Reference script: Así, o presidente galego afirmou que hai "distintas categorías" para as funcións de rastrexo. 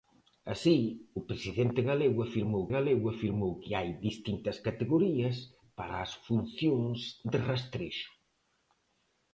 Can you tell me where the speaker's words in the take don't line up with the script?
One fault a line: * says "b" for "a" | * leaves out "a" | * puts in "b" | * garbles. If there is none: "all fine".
* puts in "galego afirmou"